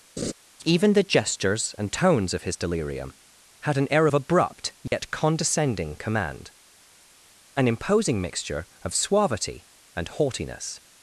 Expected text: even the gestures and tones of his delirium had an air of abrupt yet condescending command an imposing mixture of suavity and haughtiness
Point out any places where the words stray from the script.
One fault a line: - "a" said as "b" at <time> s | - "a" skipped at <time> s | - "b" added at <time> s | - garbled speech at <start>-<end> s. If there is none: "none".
none